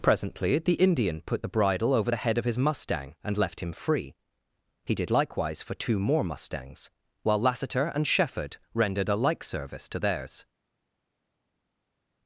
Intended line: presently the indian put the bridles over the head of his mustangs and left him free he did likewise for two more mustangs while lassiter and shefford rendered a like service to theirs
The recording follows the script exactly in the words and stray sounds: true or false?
false